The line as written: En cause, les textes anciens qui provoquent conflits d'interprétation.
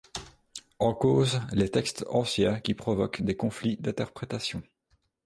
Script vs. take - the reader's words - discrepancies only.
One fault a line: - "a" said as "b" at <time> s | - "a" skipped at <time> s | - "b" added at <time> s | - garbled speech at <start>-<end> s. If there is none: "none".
- "des" added at 3.2 s